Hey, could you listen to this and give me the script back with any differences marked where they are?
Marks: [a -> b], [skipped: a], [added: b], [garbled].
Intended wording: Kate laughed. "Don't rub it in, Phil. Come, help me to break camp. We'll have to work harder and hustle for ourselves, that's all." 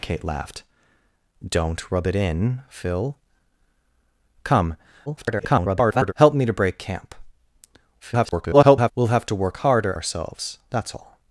Kate laughed. "Don't rub it in, Phil. Come, [garbled] help me to break camp. [garbled] We'll have to work harder [skipped: and hustle for] ourselves, that's all."